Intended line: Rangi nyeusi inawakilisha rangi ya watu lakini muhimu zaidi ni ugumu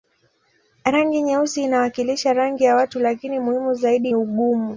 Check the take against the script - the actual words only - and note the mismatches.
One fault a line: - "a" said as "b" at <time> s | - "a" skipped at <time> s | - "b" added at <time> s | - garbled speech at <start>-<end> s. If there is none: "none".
- "ni" skipped at 4.1 s